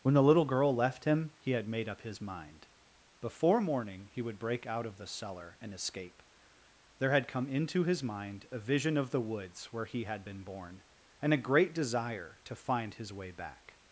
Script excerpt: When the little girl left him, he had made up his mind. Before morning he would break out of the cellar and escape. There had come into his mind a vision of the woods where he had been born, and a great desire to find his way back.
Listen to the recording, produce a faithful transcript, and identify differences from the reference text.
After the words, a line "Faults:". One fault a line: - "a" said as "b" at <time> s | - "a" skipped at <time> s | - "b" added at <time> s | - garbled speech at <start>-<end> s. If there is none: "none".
When the little girl left him, he had made up his mind. Before morning he would break out of the cellar and escape. There had come into his mind a vision of the woods where he had been born, and a great desire to find his way back.
Faults:
none